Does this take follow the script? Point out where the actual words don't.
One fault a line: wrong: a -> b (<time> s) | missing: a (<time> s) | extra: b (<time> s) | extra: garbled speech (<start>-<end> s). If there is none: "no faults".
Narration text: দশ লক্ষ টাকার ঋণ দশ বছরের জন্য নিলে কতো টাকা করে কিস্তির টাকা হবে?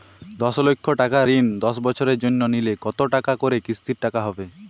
no faults